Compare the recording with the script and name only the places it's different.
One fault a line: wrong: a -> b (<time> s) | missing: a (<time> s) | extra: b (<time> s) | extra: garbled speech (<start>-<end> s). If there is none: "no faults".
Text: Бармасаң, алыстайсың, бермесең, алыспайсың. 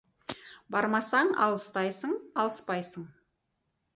missing: бермесең (2.1 s)